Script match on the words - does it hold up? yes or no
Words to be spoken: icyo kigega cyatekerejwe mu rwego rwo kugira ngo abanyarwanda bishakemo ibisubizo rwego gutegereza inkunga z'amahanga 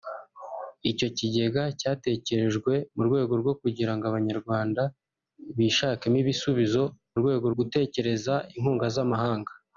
yes